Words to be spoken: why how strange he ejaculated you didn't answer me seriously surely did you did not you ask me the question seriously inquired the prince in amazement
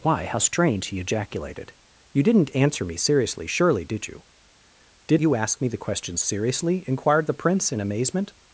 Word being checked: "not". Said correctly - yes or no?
no